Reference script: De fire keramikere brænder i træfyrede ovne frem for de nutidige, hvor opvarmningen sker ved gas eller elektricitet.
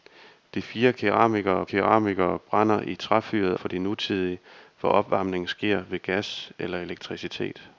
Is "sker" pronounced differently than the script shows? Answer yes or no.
no